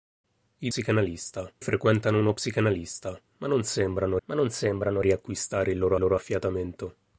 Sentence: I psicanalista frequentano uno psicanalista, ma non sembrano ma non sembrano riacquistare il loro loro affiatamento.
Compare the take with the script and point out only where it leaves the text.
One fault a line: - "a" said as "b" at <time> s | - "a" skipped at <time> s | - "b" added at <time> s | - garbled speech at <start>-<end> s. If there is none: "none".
none